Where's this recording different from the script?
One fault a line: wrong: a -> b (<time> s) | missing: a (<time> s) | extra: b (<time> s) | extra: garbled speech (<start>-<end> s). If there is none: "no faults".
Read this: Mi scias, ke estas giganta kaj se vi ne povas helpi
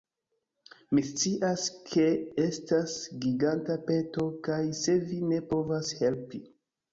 extra: peto (3.9 s)